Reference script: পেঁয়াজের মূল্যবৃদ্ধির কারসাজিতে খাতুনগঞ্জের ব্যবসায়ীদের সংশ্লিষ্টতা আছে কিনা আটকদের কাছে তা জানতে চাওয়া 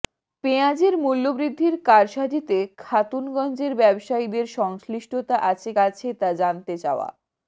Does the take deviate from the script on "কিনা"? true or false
true